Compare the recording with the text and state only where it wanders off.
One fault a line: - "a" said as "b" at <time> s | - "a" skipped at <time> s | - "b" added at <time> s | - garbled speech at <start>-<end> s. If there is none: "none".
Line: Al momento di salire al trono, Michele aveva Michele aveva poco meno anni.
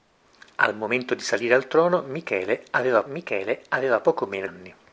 none